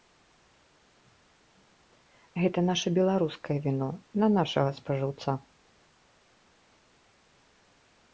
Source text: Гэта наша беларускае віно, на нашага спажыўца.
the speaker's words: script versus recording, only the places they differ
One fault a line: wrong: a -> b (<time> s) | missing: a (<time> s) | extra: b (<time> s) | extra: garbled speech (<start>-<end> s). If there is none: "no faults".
no faults